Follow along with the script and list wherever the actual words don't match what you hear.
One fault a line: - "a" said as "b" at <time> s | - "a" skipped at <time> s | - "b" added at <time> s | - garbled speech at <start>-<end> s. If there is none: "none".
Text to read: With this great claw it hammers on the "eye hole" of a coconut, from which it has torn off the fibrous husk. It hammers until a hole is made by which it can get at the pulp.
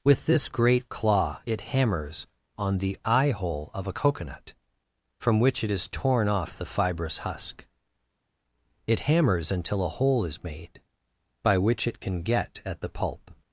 none